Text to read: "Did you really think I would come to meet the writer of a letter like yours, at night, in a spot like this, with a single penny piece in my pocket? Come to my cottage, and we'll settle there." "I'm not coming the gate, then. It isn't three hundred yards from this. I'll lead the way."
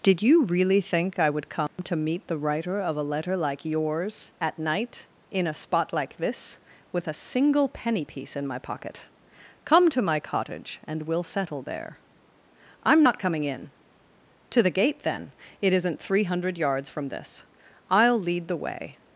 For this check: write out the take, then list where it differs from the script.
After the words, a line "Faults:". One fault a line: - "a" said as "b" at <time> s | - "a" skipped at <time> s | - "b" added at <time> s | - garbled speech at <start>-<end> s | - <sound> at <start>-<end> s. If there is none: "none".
"Did you really think I would come to meet the writer of a letter like yours, at night, in a spot like this, with a single penny piece in my pocket? Come to my cottage, and we'll settle there." "I'm not coming in!" "To the gate, then. It isn't three hundred yards from this. I'll lead the way."
Faults:
- dropout at 1.7-1.8 s
- "in To" added at 13.4 s